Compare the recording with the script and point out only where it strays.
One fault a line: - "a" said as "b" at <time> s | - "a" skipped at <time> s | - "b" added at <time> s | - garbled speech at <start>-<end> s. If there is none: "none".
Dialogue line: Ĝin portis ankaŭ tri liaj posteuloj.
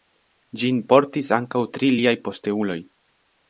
none